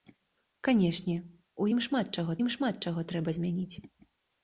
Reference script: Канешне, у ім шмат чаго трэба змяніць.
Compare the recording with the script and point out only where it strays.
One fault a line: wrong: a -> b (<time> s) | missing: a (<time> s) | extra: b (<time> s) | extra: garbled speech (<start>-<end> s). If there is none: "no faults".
extra: ім шмат чаго (2.4 s)